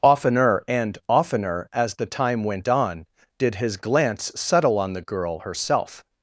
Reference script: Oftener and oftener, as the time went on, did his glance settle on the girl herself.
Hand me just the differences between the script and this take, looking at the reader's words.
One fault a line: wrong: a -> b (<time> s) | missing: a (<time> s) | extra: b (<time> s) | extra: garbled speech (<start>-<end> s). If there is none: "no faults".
no faults